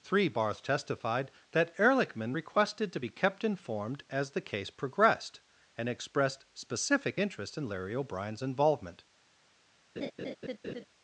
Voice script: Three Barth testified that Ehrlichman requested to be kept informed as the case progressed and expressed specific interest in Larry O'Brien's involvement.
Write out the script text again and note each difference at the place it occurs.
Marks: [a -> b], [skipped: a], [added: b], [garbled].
Three Barth testified that Ehrlichman requested to be kept informed as the case progressed and expressed specific interest in Larry O'Brien's involvement.